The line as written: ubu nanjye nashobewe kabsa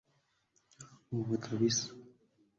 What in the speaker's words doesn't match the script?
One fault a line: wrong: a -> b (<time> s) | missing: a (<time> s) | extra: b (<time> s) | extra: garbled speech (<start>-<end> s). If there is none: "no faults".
missing: nanjye nashobewe (1.3 s)